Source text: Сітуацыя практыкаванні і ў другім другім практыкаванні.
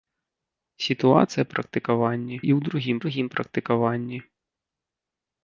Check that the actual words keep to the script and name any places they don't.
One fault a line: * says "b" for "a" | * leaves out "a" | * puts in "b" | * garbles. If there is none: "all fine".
all fine